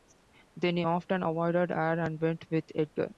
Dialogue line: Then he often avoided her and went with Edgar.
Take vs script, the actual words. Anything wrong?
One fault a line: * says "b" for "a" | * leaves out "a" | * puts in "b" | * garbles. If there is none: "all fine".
all fine